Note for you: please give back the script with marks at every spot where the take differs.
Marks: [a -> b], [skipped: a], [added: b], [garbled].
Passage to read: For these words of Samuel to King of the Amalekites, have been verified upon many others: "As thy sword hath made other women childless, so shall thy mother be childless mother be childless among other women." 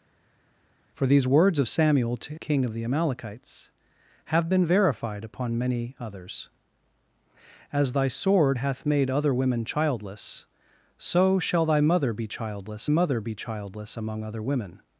For these words of Samuel to King of the Amalekites, have been verified upon many others: "As thy sword hath made other women childless, so shall thy mother be childless mother be childless among other women."